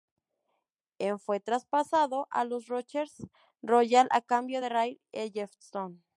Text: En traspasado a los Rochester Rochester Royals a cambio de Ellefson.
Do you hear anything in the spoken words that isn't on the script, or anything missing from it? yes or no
yes